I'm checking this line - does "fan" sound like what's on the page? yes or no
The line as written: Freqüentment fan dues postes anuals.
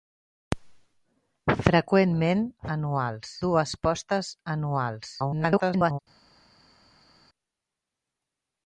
no